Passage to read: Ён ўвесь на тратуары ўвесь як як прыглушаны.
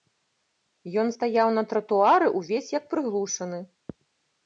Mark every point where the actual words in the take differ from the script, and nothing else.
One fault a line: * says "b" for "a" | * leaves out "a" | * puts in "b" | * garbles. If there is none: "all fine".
* says "стаяў" for "ўвесь"
* leaves out "як"